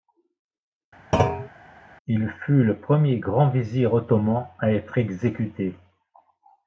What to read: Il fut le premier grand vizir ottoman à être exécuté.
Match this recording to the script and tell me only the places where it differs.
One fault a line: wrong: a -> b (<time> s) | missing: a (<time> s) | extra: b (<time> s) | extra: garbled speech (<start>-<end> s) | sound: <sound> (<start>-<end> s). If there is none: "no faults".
sound: thud (1.1-1.5 s)